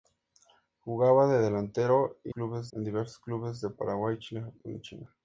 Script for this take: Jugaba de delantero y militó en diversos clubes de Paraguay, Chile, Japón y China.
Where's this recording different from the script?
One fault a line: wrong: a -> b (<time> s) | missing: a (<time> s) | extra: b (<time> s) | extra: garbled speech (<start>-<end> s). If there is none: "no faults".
wrong: militó -> clubes (2.3 s)